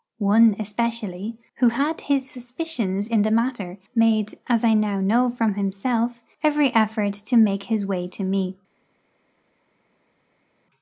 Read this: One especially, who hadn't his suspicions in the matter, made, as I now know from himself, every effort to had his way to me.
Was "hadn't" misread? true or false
true